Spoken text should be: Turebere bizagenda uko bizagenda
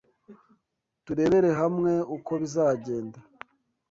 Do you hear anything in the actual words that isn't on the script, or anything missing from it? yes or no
yes